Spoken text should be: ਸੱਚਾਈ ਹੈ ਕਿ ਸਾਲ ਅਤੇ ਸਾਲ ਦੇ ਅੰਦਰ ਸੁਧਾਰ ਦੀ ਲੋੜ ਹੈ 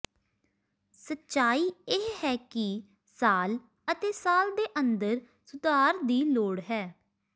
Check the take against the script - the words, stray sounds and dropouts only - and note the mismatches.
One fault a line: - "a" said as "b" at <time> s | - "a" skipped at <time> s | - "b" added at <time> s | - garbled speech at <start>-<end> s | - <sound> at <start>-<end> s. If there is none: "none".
- "ਇਹ" added at 1.9 s